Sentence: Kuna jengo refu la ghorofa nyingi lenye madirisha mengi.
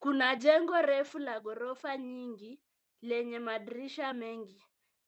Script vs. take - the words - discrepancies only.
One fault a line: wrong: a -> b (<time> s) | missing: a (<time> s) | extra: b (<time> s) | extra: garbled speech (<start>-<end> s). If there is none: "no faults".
no faults